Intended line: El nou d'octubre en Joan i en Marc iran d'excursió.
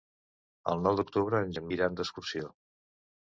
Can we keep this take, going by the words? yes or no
no